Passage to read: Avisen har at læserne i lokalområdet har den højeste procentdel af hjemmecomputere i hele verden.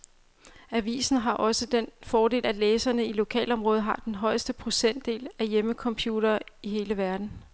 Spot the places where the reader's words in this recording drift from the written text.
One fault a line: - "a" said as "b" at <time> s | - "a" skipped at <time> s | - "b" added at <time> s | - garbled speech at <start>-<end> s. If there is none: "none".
- "også den fordel" added at 1.3 s